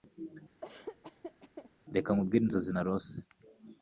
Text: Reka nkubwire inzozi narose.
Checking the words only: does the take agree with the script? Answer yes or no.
yes